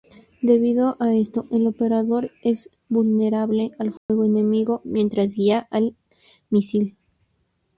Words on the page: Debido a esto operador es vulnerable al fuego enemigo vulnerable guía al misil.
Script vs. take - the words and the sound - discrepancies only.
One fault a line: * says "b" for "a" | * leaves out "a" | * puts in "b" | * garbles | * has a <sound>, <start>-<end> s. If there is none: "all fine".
* puts in "el"
* has a dropout, 4.0-4.1 s
* says "mientras" for "vulnerable"